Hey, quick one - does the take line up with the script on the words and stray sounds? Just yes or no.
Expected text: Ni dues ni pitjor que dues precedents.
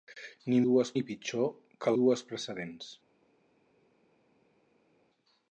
yes